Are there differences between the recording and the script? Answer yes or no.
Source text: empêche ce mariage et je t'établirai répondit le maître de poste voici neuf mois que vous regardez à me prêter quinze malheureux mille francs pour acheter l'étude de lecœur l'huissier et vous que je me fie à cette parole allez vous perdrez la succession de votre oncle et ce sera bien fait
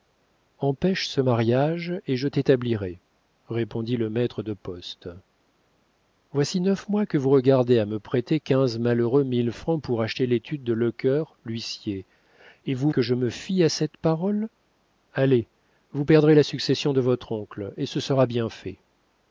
no